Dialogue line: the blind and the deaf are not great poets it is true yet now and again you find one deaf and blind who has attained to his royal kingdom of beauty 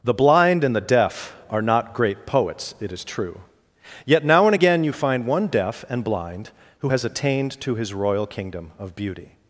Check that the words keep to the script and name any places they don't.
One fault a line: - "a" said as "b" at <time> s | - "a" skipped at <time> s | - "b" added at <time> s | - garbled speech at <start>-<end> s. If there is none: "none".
none